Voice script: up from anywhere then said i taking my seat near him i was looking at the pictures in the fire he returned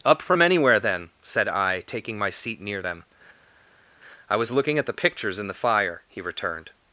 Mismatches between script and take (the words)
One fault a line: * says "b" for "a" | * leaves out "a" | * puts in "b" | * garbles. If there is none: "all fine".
* says "them" for "him"